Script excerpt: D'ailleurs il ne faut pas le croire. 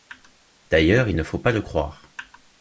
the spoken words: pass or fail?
pass